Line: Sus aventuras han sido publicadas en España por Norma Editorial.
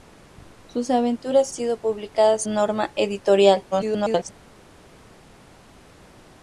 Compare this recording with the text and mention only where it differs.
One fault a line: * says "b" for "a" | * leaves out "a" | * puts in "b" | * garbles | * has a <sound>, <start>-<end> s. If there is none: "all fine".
* leaves out "han"
* leaves out "en España por"
* garbles